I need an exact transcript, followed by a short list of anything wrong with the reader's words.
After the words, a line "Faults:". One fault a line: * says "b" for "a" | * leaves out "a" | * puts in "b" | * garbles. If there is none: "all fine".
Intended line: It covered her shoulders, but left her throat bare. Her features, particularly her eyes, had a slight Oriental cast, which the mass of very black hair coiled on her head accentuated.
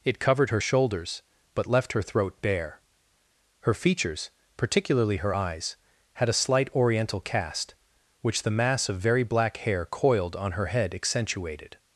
It covered her shoulders, but left her throat bare. Her features, particularly her eyes, had a slight Oriental cast, which the mass of very black hair coiled on her head accentuated.
Faults:
all fine